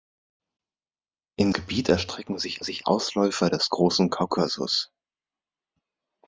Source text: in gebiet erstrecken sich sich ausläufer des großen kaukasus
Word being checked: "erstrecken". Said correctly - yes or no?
yes